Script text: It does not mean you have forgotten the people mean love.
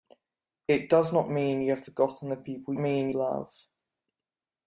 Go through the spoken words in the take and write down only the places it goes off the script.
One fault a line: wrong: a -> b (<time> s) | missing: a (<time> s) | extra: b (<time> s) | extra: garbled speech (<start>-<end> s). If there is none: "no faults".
no faults